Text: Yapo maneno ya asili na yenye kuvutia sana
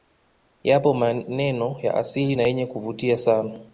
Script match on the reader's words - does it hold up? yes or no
yes